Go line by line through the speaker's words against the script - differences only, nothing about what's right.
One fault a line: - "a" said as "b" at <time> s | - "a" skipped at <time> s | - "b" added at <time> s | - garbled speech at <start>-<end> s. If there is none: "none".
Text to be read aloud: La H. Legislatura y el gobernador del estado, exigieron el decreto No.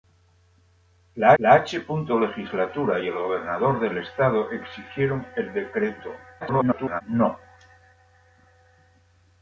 - "la" added at 1.4 s
- garbled speech at 6.4-7.0 s